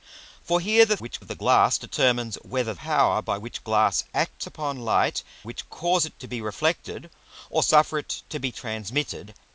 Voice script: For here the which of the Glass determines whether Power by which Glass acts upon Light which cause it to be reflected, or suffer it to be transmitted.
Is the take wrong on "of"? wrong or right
right